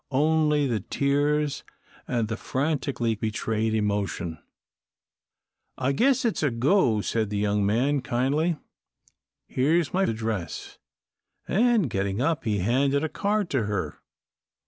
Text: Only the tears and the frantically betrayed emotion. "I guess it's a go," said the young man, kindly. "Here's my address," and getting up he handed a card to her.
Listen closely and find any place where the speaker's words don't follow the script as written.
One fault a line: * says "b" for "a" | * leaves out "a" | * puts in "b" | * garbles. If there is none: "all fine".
all fine